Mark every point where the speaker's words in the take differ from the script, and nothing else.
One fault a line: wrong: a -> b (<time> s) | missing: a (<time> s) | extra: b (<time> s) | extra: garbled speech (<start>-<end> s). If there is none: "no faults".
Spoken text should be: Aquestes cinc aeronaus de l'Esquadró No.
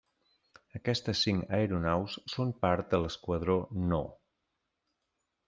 extra: són part (2.3 s)